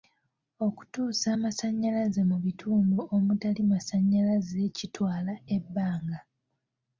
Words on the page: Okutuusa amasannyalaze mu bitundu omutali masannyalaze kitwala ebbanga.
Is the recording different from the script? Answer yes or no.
no